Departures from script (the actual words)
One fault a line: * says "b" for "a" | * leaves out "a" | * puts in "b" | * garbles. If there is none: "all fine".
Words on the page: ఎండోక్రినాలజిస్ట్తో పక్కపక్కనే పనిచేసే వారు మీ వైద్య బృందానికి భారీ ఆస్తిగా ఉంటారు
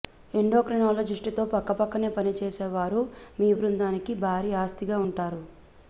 * leaves out "వైద్య"